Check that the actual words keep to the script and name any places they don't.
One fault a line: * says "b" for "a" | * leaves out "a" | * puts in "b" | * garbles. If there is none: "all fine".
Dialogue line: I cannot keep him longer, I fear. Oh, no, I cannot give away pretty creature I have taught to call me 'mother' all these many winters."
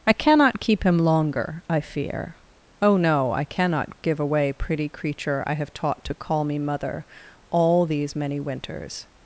all fine